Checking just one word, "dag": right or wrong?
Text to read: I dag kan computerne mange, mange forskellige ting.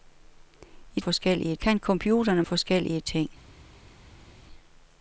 wrong